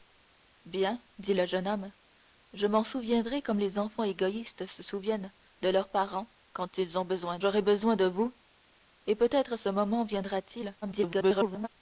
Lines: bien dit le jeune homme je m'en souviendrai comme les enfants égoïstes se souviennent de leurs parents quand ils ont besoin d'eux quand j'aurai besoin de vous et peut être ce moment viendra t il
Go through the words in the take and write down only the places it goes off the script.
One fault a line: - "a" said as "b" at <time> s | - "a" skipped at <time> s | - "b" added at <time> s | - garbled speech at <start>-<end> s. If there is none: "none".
- "d'eux quand" skipped at 7.4 s
- garbled speech at 10.8-11.7 s